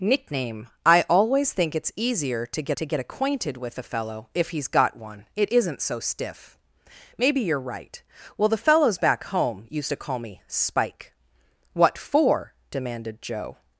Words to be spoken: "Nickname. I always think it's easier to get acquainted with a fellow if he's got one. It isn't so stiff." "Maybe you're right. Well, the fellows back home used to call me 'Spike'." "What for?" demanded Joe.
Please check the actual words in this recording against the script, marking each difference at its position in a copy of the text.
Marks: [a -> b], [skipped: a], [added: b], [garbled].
"Nickname. I always think it's easier to get [added: to get] acquainted with a fellow if he's got one. It isn't so stiff." "Maybe you're right. Well, the fellows back home used to call me 'Spike'." "What for?" demanded Joe.